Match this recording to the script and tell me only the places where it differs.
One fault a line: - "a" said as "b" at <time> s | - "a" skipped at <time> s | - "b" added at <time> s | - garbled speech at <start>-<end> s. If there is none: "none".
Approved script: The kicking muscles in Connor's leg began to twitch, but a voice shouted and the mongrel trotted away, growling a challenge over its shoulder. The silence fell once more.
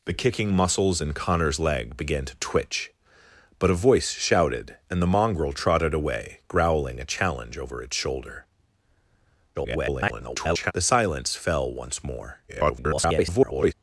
- garbled speech at 9.5-10.7 s
- garbled speech at 12.5-13.7 s